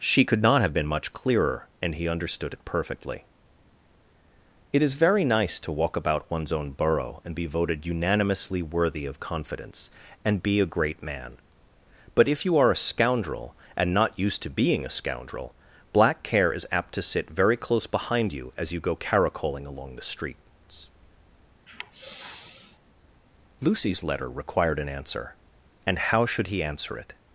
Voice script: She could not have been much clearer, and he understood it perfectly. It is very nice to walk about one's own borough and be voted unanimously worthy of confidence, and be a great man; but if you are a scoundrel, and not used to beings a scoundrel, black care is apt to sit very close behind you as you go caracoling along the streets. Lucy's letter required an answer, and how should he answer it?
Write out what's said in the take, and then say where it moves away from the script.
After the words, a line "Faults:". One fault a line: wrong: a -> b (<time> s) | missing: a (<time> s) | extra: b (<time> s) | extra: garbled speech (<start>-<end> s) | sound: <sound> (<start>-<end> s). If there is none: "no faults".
She could not have been much clearer, and he understood it perfectly. It is very nice to walk about one's own borough and be voted unanimously worthy of confidence, and be a great man; but if you are a scoundrel, and not used to being a scoundrel, black care is apt to sit very close behind you as you go caracoling along the streets. Lucy's letter required an answer, and how should he answer it?
Faults:
wrong: beings -> being (14.5 s)
sound: sigh (21.7-22.8 s)